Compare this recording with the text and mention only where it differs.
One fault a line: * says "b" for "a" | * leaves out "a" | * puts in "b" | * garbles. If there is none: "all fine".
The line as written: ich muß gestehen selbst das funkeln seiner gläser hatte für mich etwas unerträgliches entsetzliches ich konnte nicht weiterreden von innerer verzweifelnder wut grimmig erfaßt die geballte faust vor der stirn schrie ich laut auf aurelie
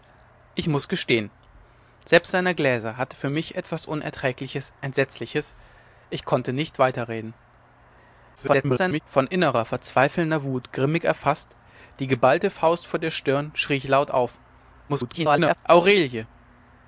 * leaves out "das funkeln"
* garbles
* garbles